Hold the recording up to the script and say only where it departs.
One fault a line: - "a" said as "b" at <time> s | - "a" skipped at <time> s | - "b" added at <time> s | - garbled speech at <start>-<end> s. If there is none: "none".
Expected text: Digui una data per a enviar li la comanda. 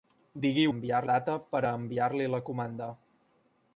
- "una" said as "enviar" at 0.7 s